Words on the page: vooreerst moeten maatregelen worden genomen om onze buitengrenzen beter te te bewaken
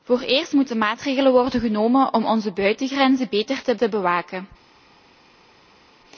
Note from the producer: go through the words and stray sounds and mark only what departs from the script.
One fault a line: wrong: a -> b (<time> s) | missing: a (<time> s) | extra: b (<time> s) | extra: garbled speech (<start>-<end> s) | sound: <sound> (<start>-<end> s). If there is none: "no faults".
no faults